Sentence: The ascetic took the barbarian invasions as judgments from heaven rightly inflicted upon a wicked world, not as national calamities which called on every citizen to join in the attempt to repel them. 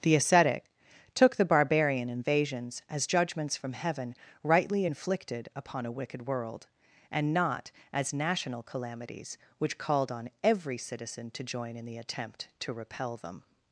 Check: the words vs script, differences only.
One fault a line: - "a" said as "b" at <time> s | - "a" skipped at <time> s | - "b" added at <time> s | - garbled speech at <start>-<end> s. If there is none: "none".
- "and" added at 7.1 s